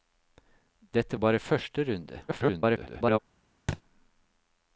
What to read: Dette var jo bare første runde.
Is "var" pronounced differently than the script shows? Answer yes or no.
yes